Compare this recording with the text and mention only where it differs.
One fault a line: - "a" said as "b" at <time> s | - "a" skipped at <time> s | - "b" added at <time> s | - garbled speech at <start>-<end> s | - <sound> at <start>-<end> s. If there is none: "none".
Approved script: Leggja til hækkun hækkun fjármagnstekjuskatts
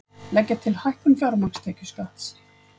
- "hækkun" skipped at 1.2 s